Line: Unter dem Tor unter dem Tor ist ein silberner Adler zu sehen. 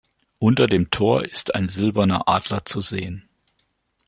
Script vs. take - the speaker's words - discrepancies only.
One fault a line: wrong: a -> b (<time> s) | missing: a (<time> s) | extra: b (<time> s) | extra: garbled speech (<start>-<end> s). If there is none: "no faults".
missing: unter dem Tor (1.2 s)